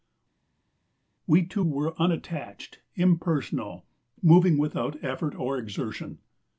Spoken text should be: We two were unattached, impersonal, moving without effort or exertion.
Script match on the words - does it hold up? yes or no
yes